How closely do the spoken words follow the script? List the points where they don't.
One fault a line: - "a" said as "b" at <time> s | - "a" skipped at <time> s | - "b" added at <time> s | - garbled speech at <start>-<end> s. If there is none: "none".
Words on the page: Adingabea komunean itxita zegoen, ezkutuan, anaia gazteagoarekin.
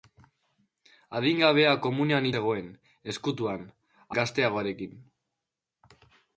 - "itxita" skipped at 2.3 s
- "anaia" skipped at 3.7 s